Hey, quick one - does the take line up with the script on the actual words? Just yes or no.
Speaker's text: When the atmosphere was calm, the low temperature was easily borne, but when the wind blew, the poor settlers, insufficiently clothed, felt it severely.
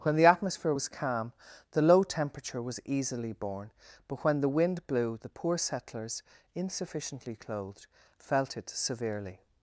yes